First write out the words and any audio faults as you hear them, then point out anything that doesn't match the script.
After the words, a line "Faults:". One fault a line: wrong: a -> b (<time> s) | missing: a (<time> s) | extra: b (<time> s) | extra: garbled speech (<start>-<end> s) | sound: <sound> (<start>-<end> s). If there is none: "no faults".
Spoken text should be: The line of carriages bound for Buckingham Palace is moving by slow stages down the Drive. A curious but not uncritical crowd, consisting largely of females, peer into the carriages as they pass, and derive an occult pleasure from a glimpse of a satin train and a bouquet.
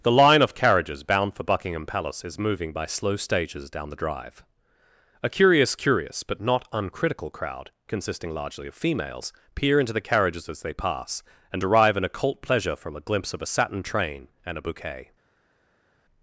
The line of carriages bound for Buckingham Palace is moving by slow stages down the Drive. A curious curious but not uncritical crowd, consisting largely of females, peer into the carriages as they pass, and derive an occult pleasure from a glimpse of a satin train and a bouquet.
Faults:
extra: curious (5.8 s)